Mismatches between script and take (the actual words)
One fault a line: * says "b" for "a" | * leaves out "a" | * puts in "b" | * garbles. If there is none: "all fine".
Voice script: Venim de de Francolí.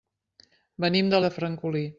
all fine